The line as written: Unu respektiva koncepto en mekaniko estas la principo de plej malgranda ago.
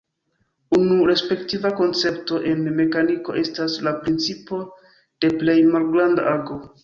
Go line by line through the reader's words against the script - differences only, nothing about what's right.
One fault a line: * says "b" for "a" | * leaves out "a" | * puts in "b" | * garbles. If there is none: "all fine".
all fine